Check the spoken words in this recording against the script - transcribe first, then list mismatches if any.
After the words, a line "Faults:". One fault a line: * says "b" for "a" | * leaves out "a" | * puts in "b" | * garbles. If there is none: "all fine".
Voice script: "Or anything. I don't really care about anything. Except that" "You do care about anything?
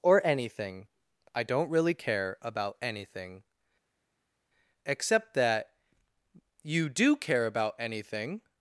"Or anything. I don't really care about anything. Except that" "You do care about anything?
Faults:
all fine